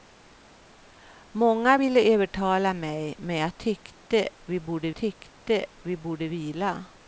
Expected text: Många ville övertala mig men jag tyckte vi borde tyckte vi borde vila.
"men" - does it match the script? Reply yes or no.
yes